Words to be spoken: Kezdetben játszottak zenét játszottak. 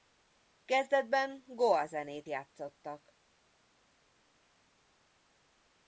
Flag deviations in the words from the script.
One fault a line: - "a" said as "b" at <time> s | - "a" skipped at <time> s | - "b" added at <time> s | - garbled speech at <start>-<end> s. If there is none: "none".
- "játszottak" said as "goa" at 1.5 s